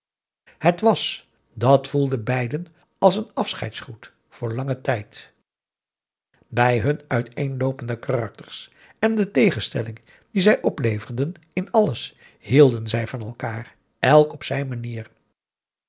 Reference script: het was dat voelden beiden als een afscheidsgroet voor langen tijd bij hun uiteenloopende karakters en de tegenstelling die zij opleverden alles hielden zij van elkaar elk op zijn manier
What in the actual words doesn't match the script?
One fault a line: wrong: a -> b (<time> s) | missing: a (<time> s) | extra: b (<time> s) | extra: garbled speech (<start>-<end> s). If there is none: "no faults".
extra: in (11.5 s)